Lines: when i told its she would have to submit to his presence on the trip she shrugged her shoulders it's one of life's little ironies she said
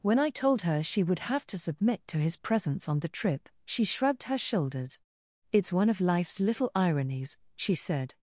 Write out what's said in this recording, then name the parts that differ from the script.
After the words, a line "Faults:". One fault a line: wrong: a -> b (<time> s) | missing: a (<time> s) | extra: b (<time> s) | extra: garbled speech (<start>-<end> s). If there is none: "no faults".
when i told her she would have to submit to his presence on the trip she shrugged her shoulders it's one of life's little ironies she said
Faults:
wrong: its -> her (0.6 s)